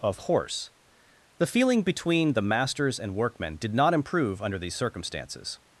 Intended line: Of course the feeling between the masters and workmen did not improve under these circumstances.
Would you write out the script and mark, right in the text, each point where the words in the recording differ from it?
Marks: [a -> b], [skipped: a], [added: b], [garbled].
Of [course -> horse] the feeling between the masters and workmen did not improve under these circumstances.